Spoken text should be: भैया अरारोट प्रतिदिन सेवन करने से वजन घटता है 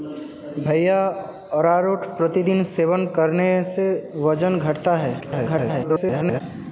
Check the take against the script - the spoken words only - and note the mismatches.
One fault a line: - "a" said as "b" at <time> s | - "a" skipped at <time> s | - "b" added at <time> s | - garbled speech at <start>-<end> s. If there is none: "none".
- garbled speech at 5.2-6.4 s